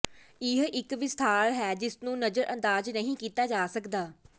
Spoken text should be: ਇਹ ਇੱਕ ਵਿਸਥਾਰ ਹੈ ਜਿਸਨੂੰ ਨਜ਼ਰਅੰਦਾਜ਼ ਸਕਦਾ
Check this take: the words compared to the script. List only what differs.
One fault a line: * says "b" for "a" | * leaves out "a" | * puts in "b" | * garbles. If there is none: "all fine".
* puts in "ਨਹੀਂ ਕੀਤਾ ਜਾ"